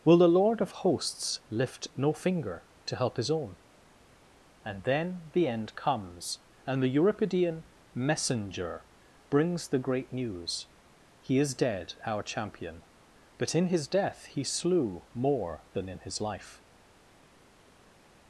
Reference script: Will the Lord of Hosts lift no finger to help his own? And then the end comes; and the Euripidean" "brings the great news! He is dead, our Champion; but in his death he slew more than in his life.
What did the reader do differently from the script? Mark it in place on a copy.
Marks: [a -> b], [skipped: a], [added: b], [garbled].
Will the Lord of Hosts lift no finger to help his own? And then the end comes; and the Euripidean" [added: messenger] "brings the great news! He is dead, our Champion; but in his death he slew more than in his life.